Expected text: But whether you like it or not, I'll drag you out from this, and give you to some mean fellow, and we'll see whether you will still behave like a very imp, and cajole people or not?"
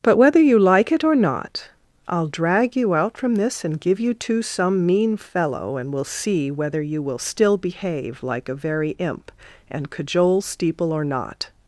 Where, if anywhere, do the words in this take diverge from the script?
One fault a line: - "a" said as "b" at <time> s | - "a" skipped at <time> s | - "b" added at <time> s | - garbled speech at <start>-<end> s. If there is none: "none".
- "people" said as "steeple" at 10.4 s